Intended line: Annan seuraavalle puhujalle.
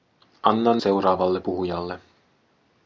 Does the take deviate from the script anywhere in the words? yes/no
no